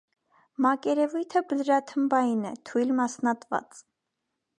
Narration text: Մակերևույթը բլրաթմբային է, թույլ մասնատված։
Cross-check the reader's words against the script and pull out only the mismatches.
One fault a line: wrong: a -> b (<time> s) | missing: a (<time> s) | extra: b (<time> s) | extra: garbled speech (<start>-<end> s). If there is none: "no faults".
no faults